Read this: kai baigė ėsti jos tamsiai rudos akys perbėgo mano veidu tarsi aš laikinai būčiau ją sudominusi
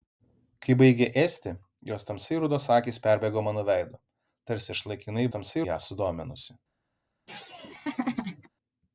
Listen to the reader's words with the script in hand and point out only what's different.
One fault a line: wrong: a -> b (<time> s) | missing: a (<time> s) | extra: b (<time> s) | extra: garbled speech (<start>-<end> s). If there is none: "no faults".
wrong: būčiau -> tamsiai (5.3 s)